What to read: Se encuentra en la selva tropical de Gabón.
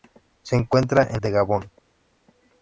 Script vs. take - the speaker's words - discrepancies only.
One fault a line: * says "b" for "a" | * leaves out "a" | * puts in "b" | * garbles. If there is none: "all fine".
* leaves out "la selva tropical"